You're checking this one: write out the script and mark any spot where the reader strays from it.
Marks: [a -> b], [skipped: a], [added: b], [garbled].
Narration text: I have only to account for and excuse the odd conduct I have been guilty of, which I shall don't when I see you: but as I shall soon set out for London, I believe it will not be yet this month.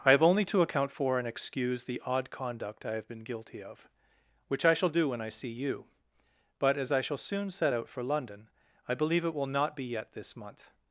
I have only to account for and excuse the odd conduct I have been guilty of, which I shall [don't -> do] when I see you: but as I shall soon set out for London, I believe it will not be yet this month.